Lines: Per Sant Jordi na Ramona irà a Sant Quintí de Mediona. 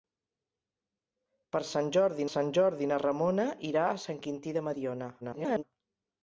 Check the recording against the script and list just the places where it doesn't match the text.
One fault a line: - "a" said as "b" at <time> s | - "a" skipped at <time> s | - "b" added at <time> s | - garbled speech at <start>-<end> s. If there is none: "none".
- "Sant Jordi" added at 2.3 s
- garbled speech at 5.2-5.6 s